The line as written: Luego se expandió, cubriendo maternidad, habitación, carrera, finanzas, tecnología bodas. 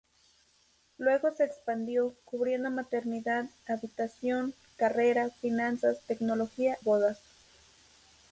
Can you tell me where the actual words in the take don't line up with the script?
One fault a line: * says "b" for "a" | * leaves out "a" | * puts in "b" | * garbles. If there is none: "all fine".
all fine